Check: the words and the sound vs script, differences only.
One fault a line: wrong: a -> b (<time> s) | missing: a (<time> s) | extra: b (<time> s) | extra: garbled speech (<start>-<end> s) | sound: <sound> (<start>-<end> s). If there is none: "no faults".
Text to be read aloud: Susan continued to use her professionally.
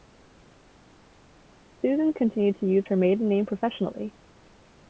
extra: maiden name (3.0 s)